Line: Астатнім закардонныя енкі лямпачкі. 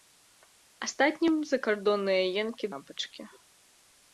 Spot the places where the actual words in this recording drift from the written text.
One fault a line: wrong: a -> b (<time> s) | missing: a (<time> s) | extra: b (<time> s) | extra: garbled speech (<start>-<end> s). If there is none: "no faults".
no faults